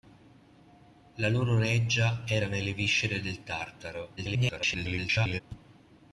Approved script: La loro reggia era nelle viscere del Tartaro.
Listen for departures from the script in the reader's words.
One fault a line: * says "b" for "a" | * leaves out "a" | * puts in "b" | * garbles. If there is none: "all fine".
* garbles